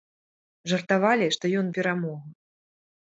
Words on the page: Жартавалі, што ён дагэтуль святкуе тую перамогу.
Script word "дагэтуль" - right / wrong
wrong